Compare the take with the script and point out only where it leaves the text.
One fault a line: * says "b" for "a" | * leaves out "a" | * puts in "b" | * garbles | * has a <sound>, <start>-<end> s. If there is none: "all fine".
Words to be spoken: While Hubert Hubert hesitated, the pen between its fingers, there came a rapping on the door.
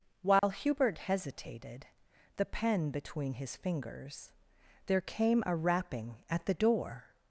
* has a dropout, 0.4-0.4 s
* leaves out "Hubert"
* says "his" for "its"
* says "at" for "on"